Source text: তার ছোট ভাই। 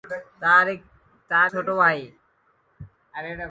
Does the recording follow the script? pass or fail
pass